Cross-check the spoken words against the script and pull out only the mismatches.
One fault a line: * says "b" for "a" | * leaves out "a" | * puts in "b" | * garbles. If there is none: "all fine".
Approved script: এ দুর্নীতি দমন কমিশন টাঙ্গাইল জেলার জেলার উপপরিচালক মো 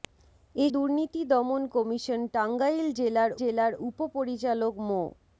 all fine